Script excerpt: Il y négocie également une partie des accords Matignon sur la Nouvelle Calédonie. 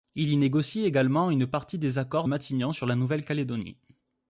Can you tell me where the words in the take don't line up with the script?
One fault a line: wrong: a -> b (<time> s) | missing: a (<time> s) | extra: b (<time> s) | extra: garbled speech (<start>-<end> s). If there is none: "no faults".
no faults